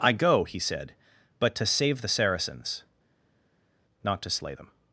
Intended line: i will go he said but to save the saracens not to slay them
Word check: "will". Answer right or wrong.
wrong